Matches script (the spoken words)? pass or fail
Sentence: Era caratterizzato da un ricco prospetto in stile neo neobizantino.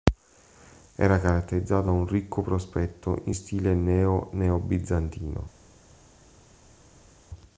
fail